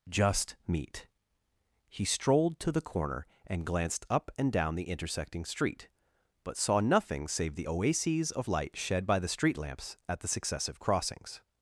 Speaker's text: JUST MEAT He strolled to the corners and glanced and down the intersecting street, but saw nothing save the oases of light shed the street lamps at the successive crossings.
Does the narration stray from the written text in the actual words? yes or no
yes